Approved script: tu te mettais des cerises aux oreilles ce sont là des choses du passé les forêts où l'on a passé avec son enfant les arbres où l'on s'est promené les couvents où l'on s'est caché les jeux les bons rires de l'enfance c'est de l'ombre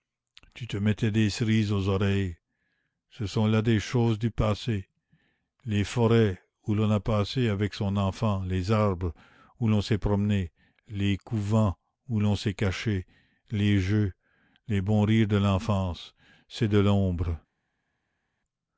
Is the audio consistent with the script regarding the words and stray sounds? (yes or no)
yes